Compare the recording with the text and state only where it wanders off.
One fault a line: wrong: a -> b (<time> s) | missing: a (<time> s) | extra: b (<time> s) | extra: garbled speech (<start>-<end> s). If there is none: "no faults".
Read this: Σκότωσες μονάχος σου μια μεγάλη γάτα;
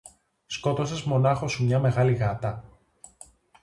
no faults